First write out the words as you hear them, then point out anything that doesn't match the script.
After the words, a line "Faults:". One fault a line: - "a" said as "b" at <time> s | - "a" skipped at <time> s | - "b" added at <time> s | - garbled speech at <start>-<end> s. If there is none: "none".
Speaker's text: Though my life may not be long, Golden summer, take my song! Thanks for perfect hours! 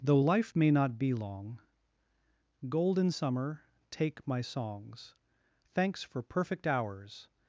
Though life may not be long, Golden summer, take my songs! Thanks for perfect hours!
Faults:
- "my" skipped at 0.2 s
- "song" said as "songs" at 4.4 s